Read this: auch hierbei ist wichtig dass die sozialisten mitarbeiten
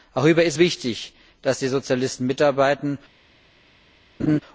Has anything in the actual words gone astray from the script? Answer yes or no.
no